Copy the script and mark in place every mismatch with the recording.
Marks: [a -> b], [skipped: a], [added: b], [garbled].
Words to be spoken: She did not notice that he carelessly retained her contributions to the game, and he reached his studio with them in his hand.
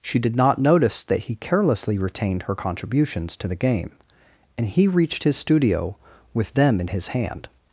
She did not notice that he carelessly retained her contributions to the game, and he reached his studio with them in his hand.